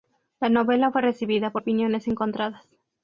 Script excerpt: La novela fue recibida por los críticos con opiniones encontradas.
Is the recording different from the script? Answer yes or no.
yes